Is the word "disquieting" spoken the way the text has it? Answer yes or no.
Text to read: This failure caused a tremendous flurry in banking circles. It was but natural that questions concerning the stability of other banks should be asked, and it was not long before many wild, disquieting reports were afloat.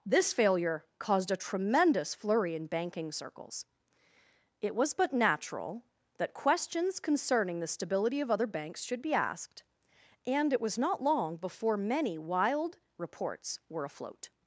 no